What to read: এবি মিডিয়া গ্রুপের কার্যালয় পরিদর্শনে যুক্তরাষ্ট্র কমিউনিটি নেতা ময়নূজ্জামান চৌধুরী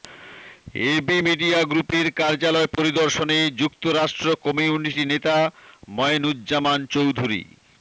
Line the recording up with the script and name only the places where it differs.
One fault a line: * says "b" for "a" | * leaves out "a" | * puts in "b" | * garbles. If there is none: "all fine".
all fine